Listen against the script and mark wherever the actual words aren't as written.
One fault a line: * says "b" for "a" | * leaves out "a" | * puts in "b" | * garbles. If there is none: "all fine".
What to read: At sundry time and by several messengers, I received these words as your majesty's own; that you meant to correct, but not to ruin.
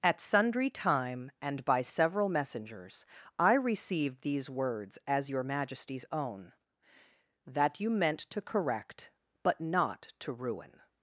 all fine